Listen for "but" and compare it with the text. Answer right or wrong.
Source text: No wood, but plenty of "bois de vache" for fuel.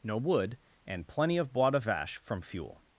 wrong